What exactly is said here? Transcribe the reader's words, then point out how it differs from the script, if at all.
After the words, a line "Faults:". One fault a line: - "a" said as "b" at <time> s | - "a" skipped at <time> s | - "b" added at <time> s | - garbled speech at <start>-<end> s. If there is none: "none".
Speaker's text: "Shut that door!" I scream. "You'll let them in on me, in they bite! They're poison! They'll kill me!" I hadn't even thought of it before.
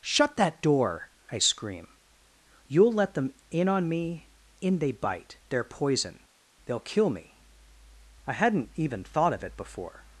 "Shut that door!" I scream. "You'll let them in on me, in they bite! They're poison! They'll kill me!" I hadn't even thought of it before.
Faults:
none